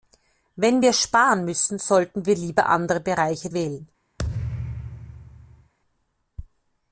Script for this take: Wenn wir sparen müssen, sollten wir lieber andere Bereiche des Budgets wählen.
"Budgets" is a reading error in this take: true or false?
true